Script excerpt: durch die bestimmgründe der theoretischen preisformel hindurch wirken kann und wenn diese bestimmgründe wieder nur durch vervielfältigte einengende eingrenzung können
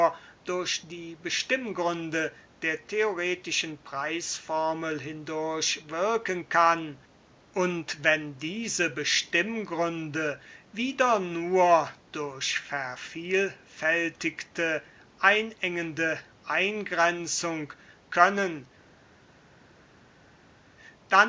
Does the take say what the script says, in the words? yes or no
yes